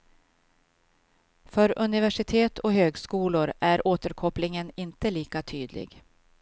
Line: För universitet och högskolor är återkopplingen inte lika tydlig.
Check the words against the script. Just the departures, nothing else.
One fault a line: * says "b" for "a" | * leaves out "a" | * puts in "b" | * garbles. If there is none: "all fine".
all fine